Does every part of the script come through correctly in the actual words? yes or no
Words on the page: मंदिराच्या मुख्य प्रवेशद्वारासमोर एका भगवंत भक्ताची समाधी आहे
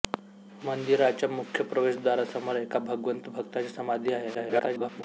no